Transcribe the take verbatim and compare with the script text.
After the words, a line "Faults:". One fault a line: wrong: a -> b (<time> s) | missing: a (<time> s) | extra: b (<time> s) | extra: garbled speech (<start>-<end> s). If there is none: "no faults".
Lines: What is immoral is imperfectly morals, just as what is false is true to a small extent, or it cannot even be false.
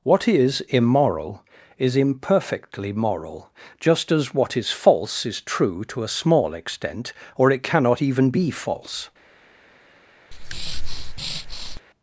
What is immoral is imperfectly moral, just as what is false is true to a small extent, or it cannot even be false.
Faults:
wrong: morals -> moral (2.9 s)